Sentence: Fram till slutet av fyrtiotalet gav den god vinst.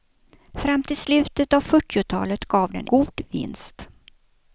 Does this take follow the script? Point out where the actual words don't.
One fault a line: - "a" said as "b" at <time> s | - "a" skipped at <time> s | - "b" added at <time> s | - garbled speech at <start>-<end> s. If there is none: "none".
none